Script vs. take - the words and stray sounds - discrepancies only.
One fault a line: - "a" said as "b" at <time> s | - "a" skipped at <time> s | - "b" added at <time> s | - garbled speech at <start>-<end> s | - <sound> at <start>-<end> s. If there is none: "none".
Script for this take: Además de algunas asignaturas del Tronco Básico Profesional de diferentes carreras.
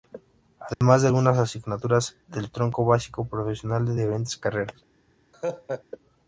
- dropout at 0.7-0.8 s
- laugh at 5.3-5.8 s